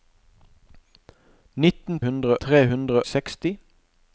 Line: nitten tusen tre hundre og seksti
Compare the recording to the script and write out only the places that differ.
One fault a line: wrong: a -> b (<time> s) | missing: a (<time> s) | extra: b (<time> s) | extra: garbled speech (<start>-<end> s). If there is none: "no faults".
wrong: tusen -> hundre (2.0 s)
missing: og (3.0 s)